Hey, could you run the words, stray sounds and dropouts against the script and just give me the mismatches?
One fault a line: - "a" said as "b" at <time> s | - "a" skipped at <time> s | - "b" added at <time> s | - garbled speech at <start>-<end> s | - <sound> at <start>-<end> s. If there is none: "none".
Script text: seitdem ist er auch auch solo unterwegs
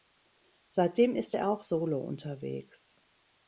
- "auch" skipped at 1.7 s